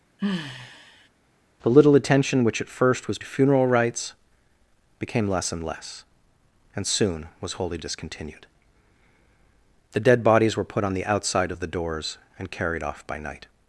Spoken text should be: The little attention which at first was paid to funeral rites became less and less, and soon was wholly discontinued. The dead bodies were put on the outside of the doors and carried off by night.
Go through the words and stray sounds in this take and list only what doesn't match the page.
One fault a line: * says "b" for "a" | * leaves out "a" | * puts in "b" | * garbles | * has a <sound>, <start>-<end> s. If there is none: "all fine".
* has a sigh, 0.2-1.1 s
* leaves out "paid"